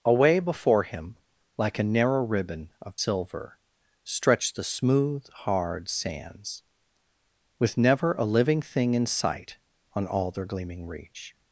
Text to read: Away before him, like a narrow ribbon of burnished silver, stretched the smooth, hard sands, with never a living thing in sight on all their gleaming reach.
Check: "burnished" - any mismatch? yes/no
yes